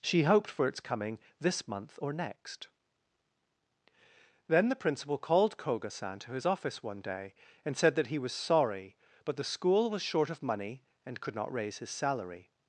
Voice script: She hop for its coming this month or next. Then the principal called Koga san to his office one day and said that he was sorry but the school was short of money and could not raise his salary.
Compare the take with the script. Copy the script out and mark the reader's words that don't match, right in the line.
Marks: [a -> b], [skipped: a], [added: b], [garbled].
She [hop -> hoped] for its coming this month or next. Then the principal called Koga san to his office one day and said that he was sorry but the school was short of money and could not raise his salary.